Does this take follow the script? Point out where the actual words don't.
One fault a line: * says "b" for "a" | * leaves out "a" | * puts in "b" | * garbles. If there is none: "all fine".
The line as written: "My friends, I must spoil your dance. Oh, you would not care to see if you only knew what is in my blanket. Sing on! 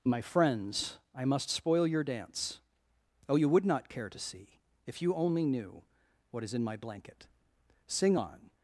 all fine